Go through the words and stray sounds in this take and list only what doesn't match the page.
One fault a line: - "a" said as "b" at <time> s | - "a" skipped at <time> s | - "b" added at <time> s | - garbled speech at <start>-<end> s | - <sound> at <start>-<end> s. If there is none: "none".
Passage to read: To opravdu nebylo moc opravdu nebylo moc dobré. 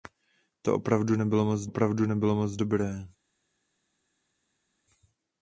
none